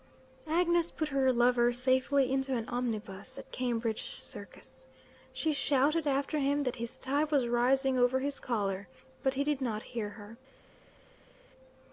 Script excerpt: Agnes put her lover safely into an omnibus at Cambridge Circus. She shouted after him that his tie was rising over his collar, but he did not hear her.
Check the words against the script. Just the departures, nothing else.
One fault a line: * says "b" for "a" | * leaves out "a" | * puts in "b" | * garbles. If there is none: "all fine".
all fine